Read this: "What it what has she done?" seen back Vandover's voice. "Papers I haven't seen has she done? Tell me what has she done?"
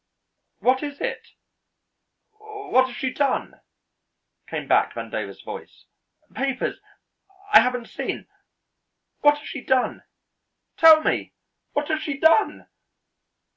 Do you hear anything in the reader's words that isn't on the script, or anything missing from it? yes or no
yes